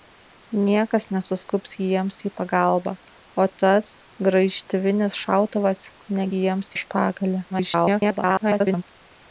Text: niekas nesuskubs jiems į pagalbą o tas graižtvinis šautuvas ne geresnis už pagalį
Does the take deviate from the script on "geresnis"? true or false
true